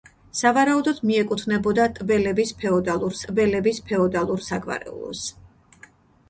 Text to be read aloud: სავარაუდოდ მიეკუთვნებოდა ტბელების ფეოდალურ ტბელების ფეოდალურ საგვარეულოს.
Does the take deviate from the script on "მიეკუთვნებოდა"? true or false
false